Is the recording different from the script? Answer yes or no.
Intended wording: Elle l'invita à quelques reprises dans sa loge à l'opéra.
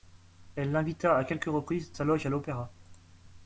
yes